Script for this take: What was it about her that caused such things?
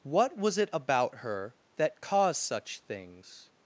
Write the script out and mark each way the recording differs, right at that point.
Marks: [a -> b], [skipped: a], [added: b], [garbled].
What was it about her that caused such things?